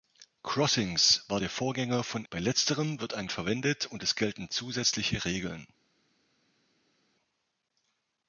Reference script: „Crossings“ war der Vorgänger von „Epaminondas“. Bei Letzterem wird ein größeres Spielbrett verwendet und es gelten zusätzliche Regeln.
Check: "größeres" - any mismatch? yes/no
yes